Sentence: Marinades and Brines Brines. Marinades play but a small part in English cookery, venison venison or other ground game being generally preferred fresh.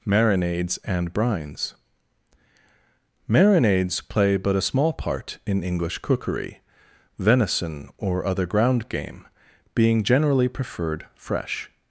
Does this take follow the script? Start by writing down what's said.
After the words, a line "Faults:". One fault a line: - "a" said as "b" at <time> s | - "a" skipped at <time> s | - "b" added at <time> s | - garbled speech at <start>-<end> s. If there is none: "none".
Marinades and Brines. Marinades play but a small part in English cookery, venison or other ground game being generally preferred fresh.
Faults:
- "Brines" skipped at 1.7 s
- "venison" skipped at 7.9 s